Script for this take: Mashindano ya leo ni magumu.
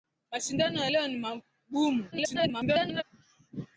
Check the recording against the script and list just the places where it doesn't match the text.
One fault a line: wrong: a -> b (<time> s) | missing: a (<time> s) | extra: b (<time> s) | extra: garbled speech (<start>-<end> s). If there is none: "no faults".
extra: garbled speech (2.1-3.0 s)